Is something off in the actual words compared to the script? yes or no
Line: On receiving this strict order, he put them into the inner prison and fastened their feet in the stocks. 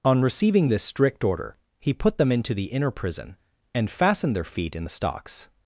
no